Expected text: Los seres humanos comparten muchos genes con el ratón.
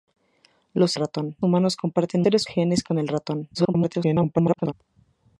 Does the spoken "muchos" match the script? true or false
false